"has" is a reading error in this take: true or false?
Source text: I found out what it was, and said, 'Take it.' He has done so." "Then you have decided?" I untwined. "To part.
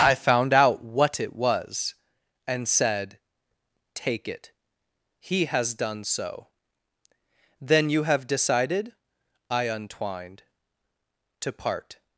false